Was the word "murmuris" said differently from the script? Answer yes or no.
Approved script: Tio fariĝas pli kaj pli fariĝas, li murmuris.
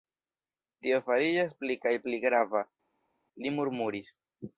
no